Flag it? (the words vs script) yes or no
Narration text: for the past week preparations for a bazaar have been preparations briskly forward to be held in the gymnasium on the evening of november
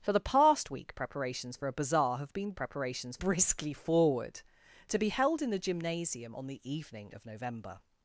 no